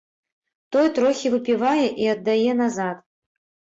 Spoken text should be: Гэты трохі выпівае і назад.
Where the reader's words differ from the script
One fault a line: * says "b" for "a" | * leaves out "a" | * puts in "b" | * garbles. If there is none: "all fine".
* says "Той" for "Гэты"
* puts in "аддае"